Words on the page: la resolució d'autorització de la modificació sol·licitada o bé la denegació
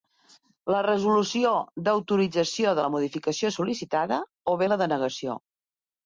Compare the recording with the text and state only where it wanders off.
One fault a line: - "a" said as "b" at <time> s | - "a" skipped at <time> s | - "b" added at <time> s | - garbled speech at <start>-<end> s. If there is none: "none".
none